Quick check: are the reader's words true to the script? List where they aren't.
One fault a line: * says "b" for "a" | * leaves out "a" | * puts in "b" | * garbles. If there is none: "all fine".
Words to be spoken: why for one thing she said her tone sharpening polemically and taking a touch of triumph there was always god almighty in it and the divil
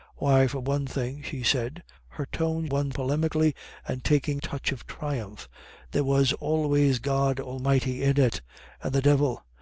* says "one" for "sharpening"
* leaves out "a"